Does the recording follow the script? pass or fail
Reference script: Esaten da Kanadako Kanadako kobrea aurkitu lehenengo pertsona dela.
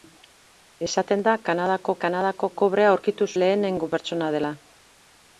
pass